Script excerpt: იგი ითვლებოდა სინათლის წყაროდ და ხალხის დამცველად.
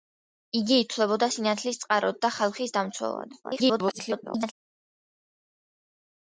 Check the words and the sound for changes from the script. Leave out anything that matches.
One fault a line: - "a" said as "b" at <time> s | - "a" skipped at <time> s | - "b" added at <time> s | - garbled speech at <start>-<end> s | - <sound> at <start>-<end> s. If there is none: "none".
- garbled speech at 3.4-4.5 s